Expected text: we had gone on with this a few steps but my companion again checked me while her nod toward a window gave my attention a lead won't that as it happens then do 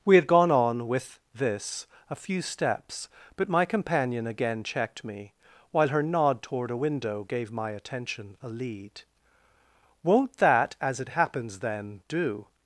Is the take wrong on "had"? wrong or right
right